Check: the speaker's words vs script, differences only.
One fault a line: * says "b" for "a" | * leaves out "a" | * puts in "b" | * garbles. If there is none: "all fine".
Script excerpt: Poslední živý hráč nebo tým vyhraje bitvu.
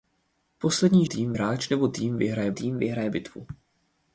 * says "tým" for "živý"
* puts in "tým vyhraje"